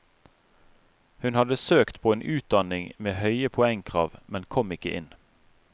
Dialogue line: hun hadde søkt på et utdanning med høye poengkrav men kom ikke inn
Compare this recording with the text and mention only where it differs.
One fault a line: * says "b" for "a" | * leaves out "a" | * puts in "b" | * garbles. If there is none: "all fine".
* says "en" for "et"